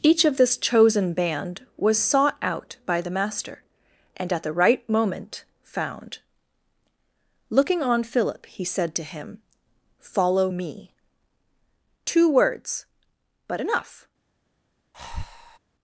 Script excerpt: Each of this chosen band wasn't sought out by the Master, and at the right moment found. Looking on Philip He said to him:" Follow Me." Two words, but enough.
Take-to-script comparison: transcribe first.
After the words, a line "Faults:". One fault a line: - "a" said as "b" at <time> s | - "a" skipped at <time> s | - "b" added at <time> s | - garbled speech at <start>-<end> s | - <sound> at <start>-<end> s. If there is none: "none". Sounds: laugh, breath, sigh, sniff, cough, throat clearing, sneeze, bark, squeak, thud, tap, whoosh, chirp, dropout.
Each of this chosen band was sought out by the Master, and at the right moment found. Looking on Philip He said to him:" Follow Me." Two words, but enough.
Faults:
- "wasn't" said as "was" at 1.8 s
- breath at 14.9-15.6 s